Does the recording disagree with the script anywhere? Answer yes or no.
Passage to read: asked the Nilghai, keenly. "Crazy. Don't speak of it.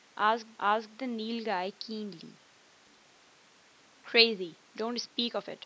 yes